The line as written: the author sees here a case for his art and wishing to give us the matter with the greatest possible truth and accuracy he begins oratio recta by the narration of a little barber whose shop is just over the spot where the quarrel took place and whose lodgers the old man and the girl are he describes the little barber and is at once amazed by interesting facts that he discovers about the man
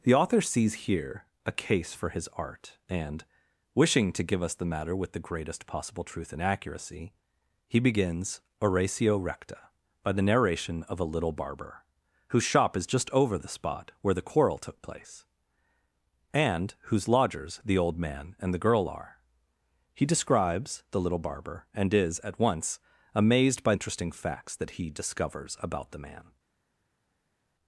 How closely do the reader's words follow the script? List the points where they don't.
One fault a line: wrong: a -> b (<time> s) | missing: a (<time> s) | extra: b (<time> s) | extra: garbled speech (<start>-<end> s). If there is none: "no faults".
no faults